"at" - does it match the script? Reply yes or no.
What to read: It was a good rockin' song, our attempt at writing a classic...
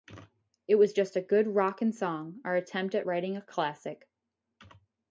yes